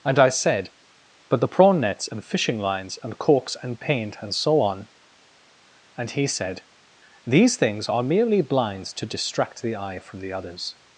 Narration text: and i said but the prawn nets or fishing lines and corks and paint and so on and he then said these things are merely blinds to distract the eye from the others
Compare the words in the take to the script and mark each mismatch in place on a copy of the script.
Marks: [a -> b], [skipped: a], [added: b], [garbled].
and i said but the prawn nets [or -> and] fishing lines and corks and paint and so on and he [skipped: then] said these things are merely blinds to distract the eye from the others